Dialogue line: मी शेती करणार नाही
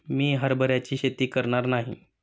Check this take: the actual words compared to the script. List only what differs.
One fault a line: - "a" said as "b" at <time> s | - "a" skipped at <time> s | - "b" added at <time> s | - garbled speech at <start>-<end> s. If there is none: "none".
- "हरभऱ्याची" added at 0.3 s